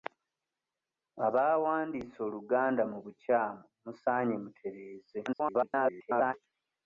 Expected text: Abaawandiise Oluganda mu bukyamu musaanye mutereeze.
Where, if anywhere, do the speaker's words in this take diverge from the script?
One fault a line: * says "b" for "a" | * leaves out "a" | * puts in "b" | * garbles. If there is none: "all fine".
* garbles